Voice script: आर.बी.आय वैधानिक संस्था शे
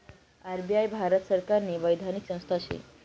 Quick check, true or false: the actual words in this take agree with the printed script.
false